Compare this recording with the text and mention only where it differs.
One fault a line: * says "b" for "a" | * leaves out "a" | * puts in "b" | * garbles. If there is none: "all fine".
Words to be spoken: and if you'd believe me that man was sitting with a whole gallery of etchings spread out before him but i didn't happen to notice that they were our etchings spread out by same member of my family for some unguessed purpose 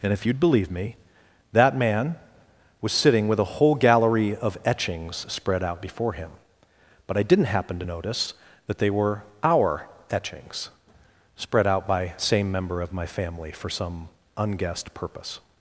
all fine